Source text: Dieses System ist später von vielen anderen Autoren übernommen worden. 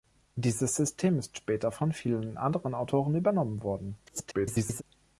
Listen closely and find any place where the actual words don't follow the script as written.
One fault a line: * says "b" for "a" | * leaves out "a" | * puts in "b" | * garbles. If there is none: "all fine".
* garbles